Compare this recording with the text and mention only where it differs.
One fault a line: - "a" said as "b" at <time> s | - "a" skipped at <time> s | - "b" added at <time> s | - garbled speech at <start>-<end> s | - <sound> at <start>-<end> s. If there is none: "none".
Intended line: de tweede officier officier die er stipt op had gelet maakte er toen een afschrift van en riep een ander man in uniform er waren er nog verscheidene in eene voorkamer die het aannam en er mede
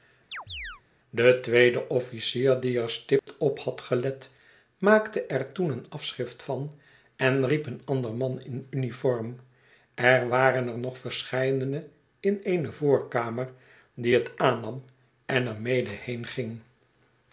- chirp at 0.3-0.8 s
- "officier" skipped at 2.6 s
- dropout at 3.2-3.3 s